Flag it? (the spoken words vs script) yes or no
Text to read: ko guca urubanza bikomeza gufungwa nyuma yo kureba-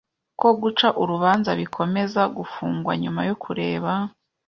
no